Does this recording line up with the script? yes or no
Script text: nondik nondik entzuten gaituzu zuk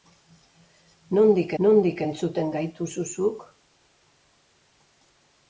yes